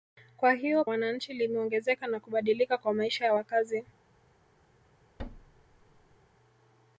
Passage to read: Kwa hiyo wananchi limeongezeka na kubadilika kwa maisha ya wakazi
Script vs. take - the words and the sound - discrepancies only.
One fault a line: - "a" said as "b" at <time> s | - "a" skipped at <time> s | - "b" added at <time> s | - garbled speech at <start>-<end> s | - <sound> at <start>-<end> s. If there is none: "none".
- thud at 5.2-6.2 s